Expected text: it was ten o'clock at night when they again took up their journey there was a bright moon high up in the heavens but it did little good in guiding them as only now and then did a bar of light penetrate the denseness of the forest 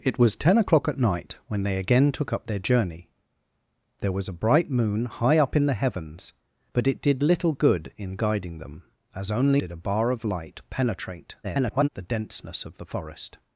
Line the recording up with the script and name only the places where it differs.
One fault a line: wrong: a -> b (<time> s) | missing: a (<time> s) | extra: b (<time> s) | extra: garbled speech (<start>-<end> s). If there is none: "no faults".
missing: now and then (9.6 s)
extra: garbled speech (11.4-11.9 s)